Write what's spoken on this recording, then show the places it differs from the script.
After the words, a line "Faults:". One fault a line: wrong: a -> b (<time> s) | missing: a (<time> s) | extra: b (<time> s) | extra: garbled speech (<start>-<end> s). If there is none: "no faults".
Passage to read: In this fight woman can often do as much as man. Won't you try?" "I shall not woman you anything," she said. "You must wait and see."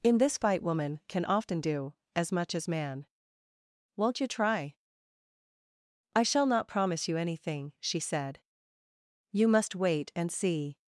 In this fight woman can often do as much as man. Won't you try?" "I shall not promise you anything," she said. "You must wait and see."
Faults:
wrong: woman -> promise (6.7 s)